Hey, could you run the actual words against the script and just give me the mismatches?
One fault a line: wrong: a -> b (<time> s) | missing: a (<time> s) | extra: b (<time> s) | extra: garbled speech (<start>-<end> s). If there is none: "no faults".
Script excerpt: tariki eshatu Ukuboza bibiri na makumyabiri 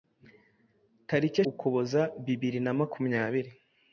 missing: eshatu (1.4 s)